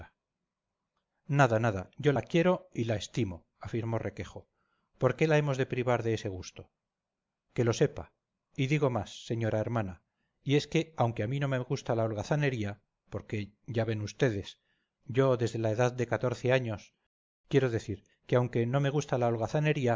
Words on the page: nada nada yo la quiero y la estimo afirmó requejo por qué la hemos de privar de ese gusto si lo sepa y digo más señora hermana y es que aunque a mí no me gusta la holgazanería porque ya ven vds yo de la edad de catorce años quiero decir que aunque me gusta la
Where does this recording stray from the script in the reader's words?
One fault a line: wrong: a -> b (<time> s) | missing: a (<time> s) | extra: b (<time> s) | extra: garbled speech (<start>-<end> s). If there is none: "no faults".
wrong: si -> que (7.5 s)
wrong: de -> desde (15.4 s)
extra: no (18.7 s)